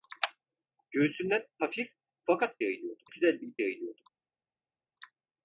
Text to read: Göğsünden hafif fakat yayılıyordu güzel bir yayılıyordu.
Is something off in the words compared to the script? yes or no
no